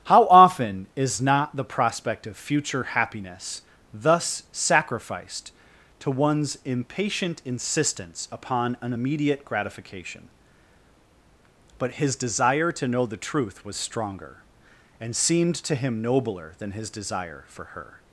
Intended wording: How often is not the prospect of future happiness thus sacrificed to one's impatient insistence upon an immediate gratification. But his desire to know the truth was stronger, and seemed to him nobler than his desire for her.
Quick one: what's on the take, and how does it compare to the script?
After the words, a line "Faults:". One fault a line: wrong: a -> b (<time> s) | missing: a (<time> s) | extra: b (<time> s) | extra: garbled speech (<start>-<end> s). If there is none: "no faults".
How often is not the prospect of future happiness thus sacrificed to one's impatient insistence upon an immediate gratification. But his desire to know the truth was stronger, and seemed to him nobler than his desire for her.
Faults:
no faults